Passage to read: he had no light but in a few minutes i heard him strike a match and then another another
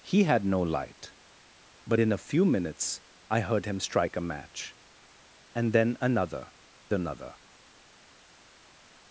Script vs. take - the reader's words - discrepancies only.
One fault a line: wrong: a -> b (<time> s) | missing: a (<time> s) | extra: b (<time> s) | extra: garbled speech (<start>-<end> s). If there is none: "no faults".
no faults